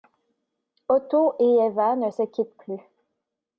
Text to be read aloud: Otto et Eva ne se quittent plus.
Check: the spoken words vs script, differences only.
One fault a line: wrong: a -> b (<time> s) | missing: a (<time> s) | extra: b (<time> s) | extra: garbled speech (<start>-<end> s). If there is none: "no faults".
no faults